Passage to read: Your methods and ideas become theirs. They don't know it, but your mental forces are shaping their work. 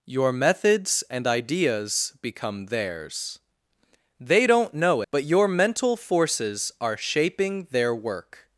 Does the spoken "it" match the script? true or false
false